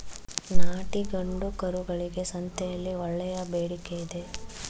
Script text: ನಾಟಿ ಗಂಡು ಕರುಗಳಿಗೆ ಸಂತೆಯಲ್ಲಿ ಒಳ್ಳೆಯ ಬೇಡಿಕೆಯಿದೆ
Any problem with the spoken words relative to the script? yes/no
no